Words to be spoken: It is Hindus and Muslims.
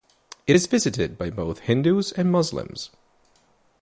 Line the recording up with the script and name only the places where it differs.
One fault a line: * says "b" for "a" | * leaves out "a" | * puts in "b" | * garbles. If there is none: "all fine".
* puts in "visited by both"